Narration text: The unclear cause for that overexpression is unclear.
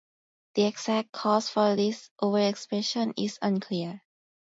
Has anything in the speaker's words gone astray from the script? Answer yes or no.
yes